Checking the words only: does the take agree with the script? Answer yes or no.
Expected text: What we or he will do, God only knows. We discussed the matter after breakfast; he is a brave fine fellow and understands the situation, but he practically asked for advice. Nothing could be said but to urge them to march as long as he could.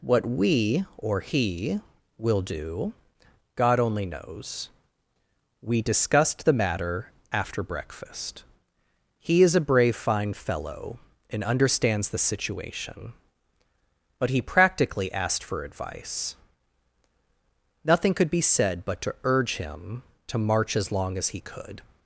no